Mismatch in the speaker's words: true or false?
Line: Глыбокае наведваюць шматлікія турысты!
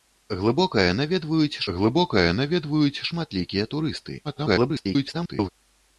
true